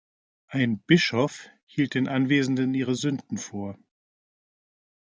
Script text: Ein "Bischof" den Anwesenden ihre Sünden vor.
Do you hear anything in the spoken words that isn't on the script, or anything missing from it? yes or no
yes